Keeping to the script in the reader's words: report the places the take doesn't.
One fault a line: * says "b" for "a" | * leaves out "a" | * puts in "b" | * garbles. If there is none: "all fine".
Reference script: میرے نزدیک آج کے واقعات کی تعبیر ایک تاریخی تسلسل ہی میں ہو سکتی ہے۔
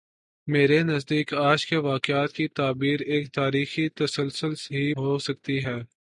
* leaves out "میں"